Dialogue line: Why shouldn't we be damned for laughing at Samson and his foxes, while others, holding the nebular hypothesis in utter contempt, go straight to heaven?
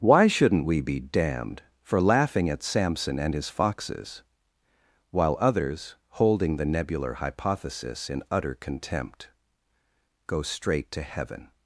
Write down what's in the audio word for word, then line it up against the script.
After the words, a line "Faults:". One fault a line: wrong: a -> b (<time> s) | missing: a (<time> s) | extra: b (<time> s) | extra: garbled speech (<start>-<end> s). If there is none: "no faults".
Why shouldn't we be damned for laughing at Samson and his foxes, while others, holding the nebular hypothesis in utter contempt, go straight to heaven?
Faults:
no faults